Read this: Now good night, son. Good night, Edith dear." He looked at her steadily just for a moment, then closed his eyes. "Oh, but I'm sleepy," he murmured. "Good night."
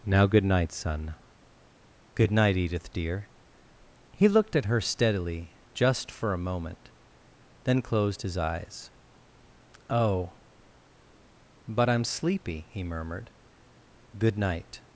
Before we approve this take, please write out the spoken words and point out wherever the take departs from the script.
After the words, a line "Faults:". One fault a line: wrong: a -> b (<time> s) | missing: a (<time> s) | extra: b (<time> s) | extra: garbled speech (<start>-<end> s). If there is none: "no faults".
Now good night, son. Good night, Edith dear." He looked at her steadily just for a moment, then closed his eyes. "Oh, but I'm sleepy," he murmured. "Good night."
Faults:
no faults